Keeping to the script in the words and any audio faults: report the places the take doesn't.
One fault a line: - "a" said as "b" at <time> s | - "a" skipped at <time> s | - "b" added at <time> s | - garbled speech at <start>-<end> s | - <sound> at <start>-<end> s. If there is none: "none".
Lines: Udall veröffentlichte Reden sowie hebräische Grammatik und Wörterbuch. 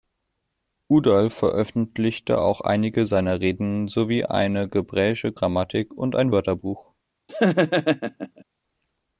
- "auch einige seiner" added at 2.4 s
- "eine" added at 4.2 s
- "ein" added at 6.2 s
- laugh at 7.3-8.4 s